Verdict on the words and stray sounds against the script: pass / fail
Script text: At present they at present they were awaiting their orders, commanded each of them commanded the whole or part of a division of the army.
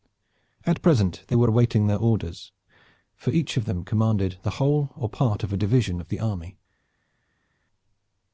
fail